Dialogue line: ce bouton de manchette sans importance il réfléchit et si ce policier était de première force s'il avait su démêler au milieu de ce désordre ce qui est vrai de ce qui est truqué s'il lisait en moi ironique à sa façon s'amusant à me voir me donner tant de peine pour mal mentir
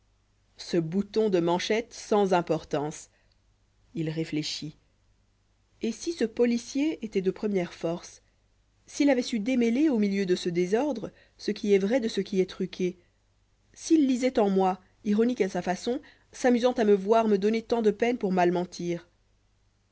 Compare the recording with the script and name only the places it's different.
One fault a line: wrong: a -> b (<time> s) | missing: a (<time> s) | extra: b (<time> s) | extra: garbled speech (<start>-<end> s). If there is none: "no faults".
no faults